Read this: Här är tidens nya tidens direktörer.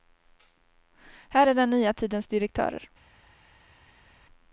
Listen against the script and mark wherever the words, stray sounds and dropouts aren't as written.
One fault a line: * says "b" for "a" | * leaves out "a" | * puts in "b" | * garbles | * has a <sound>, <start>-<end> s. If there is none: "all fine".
* says "den" for "tidens"